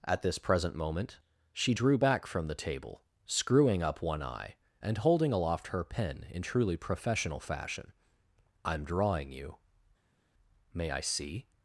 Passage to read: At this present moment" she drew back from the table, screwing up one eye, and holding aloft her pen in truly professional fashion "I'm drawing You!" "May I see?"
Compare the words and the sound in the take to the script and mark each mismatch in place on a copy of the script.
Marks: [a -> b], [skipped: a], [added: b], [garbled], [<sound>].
At this present moment" she drew back from the table, screwing up one eye, and holding aloft her pen in truly professional fashion "I'm drawing You!" "May I see?"